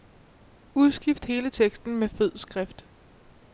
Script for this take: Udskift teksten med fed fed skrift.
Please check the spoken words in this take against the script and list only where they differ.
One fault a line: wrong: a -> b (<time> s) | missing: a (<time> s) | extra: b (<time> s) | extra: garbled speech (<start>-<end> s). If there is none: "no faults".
extra: hele (1.2 s)
missing: fed (2.4 s)